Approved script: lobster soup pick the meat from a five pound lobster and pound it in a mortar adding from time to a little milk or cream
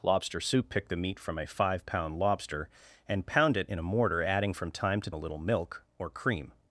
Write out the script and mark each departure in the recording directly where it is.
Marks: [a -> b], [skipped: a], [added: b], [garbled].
lobster soup pick the meat from a five pound lobster and pound it in a mortar adding from time to a little milk or cream